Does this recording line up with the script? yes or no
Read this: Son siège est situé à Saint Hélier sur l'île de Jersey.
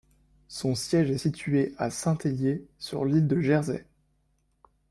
yes